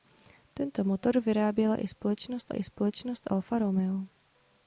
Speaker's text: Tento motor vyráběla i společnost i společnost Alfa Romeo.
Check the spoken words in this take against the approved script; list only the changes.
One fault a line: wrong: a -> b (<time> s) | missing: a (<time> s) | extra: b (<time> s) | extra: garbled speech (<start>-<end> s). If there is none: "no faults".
no faults